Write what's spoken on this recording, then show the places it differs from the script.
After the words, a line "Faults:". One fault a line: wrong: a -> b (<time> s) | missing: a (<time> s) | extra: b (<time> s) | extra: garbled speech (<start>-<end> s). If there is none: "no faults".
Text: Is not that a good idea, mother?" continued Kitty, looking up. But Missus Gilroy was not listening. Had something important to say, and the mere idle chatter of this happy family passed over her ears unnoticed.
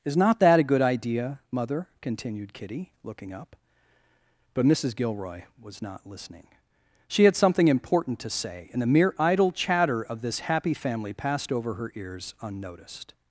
Is not that a good idea, mother?" continued Kitty, looking up. But Missus Gilroy was not listening. She had something important to say, and the mere idle chatter of this happy family passed over her ears unnoticed.
Faults:
extra: She (7.1 s)